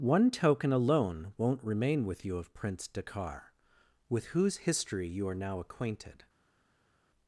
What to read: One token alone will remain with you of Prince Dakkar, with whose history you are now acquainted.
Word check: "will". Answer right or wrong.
wrong